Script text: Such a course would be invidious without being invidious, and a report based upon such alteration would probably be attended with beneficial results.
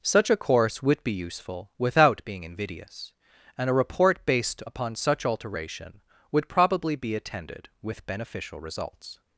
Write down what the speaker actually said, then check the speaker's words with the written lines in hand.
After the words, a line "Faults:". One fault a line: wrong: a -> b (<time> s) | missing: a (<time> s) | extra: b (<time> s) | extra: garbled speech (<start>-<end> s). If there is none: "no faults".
Such a course would be useful without being invidious, and a report based upon such alteration would probably be attended with beneficial results.
Faults:
wrong: invidious -> useful (1.1 s)